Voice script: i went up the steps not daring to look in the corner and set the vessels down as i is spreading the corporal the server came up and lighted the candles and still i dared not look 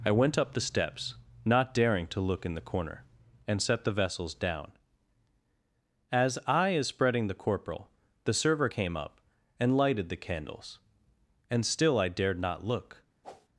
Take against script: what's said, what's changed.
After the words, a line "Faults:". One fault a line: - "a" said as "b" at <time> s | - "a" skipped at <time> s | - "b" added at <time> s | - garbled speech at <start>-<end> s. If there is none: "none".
i went up the steps not daring to look in the corner and set the vessels down as i is spreading the corporal the server came up and lighted the candles and still i dared not look
Faults:
none